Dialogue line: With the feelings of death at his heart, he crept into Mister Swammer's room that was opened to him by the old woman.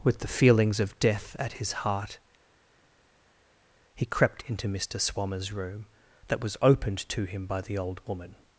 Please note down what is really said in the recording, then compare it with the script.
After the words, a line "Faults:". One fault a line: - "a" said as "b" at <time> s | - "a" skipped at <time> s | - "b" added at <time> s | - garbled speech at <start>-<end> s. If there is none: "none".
With the feelings of death at his heart, he crept into Mister Swammer's room that was opened to him by the old woman.
Faults:
none